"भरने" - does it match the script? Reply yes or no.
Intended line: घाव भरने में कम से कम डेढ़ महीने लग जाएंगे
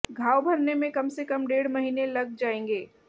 yes